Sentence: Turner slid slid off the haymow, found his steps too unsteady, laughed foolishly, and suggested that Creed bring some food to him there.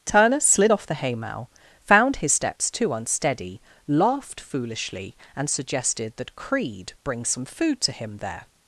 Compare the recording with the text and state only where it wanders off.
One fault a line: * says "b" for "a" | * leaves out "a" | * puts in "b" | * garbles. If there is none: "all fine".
* leaves out "slid"